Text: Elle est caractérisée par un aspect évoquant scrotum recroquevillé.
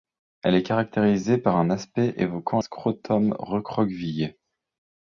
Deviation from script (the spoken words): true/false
false